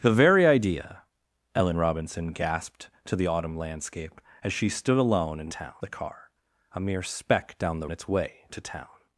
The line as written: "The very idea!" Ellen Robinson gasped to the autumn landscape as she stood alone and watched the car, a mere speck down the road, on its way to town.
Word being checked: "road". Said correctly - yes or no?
no